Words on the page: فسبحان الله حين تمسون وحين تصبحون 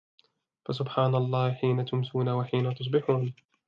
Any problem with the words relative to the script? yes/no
no